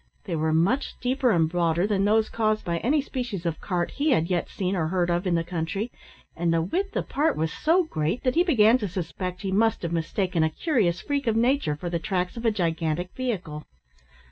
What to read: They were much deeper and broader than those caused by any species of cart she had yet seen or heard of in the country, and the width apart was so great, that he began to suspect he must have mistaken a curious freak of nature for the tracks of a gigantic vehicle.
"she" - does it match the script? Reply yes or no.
no